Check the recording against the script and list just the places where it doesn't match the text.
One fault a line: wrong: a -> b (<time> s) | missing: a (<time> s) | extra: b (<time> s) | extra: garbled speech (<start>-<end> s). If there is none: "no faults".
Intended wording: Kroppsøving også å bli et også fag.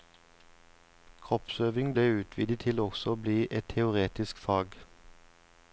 extra: ble utvidet til (1.9 s)
wrong: også -> teoretisk (3.7 s)